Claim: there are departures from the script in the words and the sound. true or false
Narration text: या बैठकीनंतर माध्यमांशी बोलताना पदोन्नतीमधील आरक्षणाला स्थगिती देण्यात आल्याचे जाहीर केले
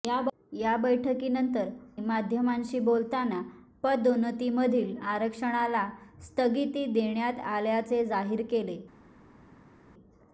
false